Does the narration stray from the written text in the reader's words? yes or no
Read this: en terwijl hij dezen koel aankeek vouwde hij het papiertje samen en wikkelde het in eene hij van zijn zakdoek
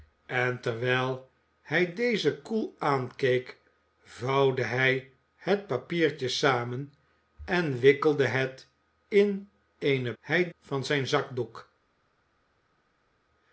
no